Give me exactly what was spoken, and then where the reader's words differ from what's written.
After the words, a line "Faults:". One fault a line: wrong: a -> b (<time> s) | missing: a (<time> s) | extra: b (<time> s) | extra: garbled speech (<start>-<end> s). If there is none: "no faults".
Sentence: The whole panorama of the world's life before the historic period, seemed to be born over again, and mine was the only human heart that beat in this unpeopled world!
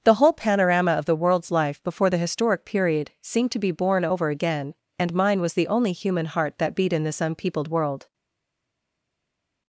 The whole panorama of the world's life before the historic period, seemed to be born over again, and mine was the only human heart that beat in this unpeopled world!
Faults:
no faults